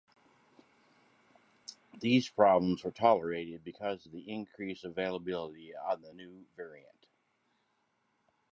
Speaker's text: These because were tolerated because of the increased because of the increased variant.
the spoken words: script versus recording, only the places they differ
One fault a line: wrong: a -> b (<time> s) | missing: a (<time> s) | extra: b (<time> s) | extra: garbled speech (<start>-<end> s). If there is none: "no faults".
wrong: because -> problems (2.3 s)
wrong: because -> availability (4.9 s)
wrong: increased -> new (6.1 s)